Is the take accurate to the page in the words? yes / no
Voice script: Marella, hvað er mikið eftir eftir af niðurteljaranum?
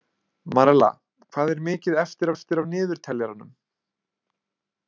yes